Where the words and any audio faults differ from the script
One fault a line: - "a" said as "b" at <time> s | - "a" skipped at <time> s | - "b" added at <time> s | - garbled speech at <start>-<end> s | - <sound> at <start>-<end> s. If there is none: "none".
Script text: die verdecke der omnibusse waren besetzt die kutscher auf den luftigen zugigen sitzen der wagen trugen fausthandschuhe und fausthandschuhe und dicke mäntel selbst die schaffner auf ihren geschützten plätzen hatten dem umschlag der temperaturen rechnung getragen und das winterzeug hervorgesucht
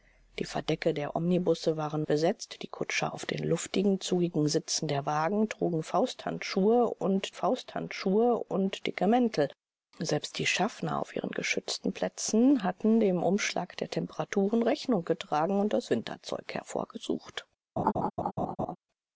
- laugh at 17.8-18.8 s